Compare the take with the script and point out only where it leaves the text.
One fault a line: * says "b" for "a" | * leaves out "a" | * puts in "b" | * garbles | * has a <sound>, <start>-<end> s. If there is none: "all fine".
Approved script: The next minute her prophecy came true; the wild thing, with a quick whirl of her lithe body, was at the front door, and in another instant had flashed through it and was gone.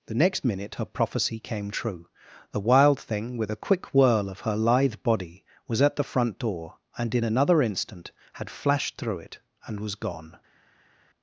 all fine